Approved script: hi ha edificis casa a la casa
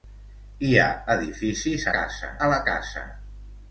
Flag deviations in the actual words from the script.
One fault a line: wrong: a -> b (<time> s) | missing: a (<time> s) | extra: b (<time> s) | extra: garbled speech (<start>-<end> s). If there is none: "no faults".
no faults